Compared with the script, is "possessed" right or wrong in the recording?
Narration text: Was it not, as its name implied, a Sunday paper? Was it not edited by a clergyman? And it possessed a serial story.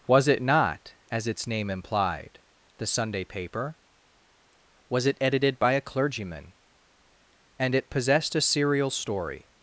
right